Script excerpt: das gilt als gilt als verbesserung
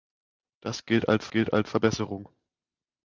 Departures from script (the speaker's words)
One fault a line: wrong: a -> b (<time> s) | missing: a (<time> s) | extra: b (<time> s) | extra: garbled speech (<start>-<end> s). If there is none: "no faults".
no faults